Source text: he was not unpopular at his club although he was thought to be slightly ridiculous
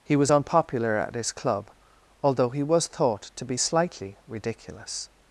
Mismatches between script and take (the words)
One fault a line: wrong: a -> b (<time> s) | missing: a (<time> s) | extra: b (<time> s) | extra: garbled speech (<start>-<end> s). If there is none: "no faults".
missing: not (0.3 s)